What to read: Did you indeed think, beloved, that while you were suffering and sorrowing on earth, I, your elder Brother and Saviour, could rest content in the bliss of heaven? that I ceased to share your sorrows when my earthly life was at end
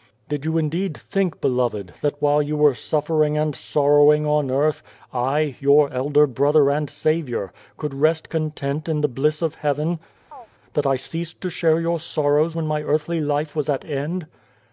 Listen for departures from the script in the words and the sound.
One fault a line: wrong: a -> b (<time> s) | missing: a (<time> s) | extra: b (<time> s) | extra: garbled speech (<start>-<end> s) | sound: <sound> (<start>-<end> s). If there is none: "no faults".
sound: chirp (10.3-10.5 s)